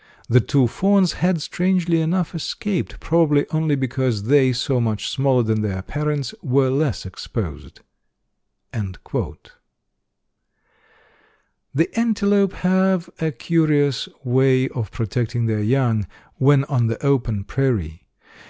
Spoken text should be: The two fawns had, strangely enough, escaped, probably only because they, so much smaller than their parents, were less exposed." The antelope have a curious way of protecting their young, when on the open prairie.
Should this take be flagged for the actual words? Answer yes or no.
no